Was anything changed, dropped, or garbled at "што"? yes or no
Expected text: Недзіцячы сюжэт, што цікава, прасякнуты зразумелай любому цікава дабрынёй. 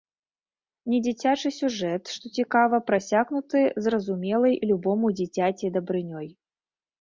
no